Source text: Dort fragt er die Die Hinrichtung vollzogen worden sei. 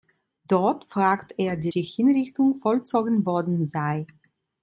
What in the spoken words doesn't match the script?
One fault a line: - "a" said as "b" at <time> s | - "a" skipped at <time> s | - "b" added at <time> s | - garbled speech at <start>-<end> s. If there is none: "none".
none